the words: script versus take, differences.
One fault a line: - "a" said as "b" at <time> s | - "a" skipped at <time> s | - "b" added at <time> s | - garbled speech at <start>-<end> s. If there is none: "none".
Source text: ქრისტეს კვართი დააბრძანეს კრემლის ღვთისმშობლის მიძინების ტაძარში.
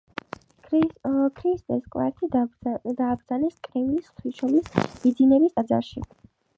none